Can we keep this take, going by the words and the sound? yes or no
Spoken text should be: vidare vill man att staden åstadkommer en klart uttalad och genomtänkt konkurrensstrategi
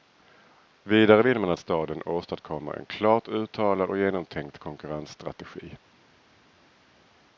yes